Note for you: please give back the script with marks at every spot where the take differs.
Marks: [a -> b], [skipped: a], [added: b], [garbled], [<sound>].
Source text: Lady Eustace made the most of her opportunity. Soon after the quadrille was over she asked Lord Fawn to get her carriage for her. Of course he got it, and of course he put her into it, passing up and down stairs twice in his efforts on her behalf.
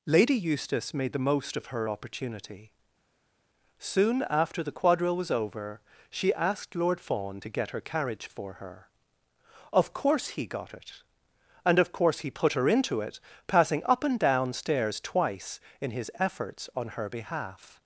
Lady Eustace made the most of her opportunity. Soon after the quadrille was over she asked Lord Fawn to get her carriage for her. Of course he got it, and of course he put her into it, passing up and down stairs twice in his efforts on her behalf.